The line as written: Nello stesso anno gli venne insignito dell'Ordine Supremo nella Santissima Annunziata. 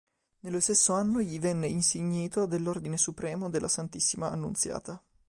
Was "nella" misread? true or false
true